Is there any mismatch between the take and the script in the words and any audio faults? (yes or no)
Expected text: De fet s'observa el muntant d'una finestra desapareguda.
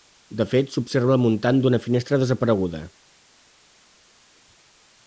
no